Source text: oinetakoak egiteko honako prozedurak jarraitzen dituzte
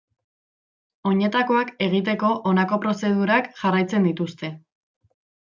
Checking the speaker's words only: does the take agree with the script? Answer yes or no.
yes